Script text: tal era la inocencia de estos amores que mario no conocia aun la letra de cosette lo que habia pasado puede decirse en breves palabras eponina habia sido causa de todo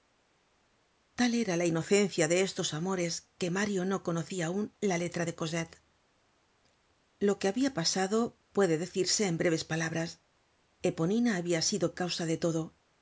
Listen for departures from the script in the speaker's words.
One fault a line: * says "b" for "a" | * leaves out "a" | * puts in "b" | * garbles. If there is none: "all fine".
all fine